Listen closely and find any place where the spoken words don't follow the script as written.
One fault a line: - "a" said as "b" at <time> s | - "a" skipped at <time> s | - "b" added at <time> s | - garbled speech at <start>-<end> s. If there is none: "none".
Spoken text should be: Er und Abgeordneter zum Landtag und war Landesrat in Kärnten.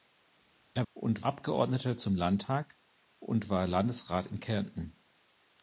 none